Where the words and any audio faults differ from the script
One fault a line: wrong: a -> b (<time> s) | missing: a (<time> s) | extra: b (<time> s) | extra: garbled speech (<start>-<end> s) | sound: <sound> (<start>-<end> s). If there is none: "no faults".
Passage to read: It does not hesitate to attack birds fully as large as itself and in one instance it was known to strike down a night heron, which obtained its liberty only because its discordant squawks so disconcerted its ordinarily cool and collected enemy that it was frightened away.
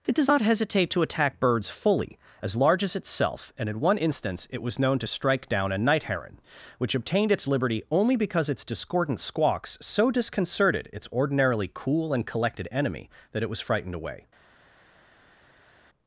no faults